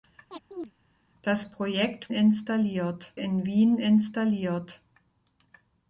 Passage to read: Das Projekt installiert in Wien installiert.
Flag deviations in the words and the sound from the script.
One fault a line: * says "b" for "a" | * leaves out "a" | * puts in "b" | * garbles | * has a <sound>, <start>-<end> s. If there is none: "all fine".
* has a chirp, 0.3-0.7 s